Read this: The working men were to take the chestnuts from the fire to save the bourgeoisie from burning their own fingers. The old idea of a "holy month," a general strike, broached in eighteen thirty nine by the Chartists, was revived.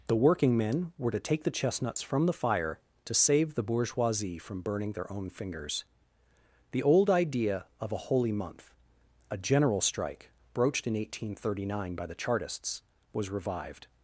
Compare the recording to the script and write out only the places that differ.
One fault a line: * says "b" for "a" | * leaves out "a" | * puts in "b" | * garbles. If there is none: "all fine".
all fine